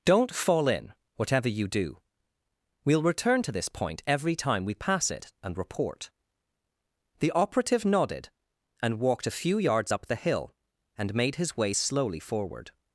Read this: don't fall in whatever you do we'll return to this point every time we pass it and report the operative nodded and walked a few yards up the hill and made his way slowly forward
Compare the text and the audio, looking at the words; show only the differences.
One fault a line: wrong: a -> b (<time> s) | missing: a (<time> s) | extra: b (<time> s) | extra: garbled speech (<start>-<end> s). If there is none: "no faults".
no faults